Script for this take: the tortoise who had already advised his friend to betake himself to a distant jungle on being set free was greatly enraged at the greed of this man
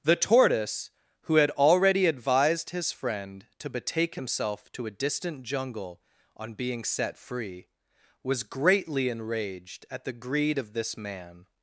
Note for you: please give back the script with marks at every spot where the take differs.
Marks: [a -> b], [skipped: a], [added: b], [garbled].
the tortoise who had already advised his friend to betake himself to a distant jungle on being set free was greatly enraged at the greed of this man